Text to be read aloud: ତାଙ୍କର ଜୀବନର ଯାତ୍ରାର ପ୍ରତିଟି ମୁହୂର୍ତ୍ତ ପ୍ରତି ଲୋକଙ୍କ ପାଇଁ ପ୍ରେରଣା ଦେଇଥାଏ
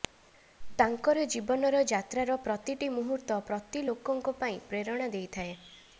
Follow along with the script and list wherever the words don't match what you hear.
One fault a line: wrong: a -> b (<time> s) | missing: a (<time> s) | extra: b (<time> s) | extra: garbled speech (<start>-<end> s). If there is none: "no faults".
no faults